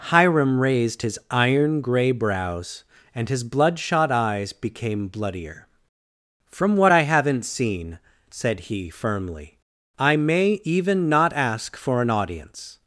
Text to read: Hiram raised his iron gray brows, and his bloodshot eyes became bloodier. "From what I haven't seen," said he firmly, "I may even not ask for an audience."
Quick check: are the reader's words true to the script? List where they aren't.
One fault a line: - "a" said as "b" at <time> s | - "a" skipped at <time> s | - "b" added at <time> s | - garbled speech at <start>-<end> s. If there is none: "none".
none